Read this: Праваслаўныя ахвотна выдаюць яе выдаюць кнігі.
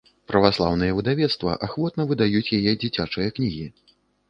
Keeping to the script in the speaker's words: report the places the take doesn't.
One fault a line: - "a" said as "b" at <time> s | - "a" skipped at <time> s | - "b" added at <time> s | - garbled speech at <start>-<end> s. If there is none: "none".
- "выдавецтва" added at 1.0 s
- "выдаюць" said as "дзіцячыя" at 2.8 s